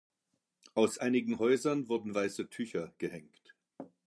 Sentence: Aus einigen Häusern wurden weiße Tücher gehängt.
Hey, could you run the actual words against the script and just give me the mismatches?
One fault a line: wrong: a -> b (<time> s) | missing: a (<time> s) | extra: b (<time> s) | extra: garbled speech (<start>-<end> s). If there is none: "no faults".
no faults